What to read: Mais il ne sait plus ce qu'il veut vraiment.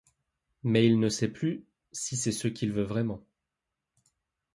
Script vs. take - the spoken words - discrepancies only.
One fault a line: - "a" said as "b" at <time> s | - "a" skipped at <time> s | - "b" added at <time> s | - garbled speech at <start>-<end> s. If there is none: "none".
- "si c'est" added at 1.9 s